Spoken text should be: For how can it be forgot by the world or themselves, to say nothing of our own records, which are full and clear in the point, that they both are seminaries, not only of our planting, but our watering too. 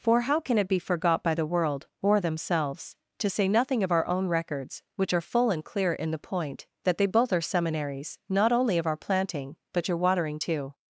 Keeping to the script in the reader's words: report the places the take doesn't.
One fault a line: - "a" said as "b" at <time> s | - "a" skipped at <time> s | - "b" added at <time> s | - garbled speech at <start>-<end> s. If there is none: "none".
- "our" said as "your" at 9.9 s